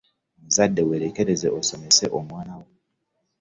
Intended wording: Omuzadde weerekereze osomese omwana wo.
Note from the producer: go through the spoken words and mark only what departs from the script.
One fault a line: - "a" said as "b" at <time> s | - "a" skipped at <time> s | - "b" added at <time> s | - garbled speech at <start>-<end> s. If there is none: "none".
none